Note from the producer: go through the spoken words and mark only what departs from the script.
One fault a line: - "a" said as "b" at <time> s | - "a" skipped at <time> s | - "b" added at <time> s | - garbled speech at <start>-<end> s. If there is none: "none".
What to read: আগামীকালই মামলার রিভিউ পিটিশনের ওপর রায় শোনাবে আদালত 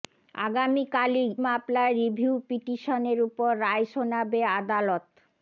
none